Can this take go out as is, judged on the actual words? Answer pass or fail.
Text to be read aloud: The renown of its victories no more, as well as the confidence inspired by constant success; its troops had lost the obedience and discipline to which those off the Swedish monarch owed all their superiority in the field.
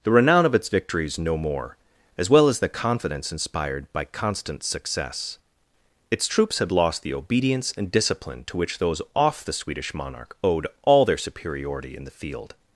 pass